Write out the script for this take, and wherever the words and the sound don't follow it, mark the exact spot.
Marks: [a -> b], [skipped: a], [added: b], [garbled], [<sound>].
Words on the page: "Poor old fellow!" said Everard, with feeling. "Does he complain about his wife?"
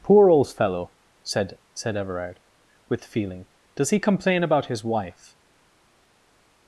"Poor old fellow!" said [added: said] Everard, with feeling. "Does he complain about his wife?"